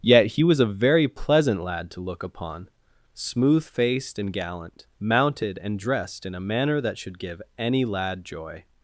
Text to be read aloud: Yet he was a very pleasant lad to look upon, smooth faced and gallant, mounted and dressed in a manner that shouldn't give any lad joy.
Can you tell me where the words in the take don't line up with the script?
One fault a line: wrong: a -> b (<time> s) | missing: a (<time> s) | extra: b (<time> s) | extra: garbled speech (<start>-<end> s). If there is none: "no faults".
wrong: shouldn't -> should (7.0 s)